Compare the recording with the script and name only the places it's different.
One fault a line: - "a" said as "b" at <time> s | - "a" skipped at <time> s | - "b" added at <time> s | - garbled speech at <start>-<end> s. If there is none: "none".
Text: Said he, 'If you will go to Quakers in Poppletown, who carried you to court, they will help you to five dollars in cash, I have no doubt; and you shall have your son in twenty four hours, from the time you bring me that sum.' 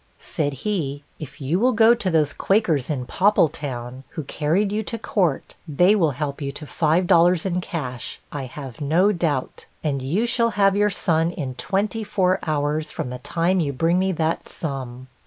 - "those" added at 2.1 s